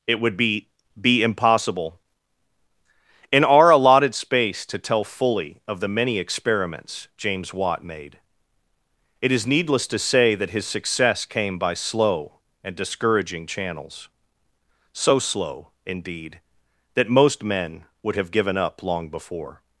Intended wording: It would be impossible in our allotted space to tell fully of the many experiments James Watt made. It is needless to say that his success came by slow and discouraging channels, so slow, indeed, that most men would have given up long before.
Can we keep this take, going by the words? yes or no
no